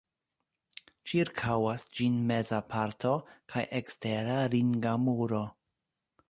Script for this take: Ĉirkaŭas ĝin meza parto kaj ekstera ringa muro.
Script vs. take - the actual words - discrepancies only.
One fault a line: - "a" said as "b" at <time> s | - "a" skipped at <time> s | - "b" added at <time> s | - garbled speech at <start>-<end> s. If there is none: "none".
none